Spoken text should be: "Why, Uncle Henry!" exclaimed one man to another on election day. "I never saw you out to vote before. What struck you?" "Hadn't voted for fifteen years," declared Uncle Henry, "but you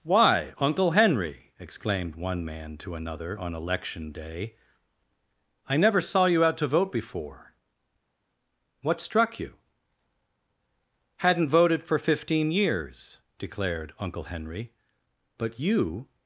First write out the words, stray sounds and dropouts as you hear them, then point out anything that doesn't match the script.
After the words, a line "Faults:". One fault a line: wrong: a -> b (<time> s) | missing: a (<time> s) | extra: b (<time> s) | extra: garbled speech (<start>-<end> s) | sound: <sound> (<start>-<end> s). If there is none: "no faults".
"Why, Uncle Henry!" exclaimed one man to another on election day. "I never saw you out to vote before. What struck you?" "Hadn't voted for fifteen years," declared Uncle Henry, "but you
Faults:
no faults